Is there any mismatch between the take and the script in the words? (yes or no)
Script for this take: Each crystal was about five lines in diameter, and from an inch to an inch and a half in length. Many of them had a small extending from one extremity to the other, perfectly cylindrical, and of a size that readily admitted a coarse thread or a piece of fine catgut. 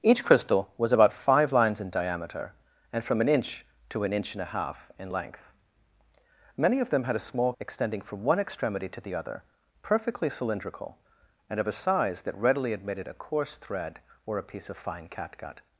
no